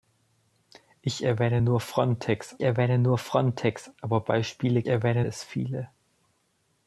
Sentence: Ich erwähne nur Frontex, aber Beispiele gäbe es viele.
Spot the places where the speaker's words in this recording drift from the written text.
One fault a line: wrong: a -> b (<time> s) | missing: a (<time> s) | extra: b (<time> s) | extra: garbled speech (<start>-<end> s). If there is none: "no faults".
extra: erwähne nur Frontex (2.6 s)
wrong: gäbe -> erwähne (4.9 s)